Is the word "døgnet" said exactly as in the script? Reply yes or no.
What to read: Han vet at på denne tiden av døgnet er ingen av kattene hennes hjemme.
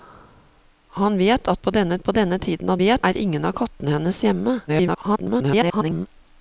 no